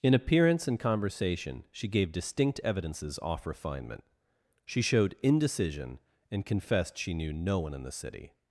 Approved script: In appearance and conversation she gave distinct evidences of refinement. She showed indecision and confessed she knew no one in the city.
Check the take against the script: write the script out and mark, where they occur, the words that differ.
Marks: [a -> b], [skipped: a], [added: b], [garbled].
In appearance and conversation she gave distinct evidences [of -> off] refinement. She showed indecision and confessed she knew no one in the city.